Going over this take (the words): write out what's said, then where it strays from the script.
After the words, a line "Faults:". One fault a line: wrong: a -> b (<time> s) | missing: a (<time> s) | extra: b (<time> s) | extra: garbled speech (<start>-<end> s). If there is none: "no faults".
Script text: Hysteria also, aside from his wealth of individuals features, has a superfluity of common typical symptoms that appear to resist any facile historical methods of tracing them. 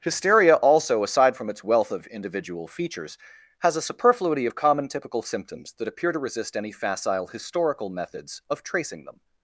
Hysteria also, aside from its wealth of individual features, has a superfluity of common typical symptoms that appear to resist any facile historical methods of tracing them.
Faults:
wrong: his -> its (1.5 s)
wrong: individuals -> individual (2.1 s)